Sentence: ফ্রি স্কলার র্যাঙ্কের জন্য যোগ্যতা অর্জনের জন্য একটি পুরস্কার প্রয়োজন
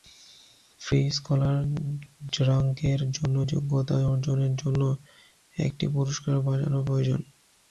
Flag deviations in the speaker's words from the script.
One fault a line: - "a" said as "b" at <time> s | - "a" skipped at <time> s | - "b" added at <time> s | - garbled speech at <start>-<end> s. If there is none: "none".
- "বাজানো" added at 6.4 s